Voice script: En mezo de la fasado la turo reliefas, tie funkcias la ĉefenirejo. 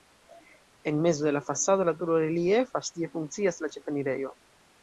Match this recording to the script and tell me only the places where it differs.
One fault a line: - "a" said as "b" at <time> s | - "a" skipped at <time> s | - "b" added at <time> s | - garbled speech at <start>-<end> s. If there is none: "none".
none